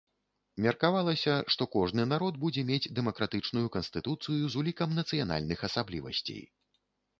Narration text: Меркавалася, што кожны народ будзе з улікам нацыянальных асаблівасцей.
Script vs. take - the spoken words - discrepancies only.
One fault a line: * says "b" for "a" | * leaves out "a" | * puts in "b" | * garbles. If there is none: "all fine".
* puts in "мець дэмакратычную канстытуцыю"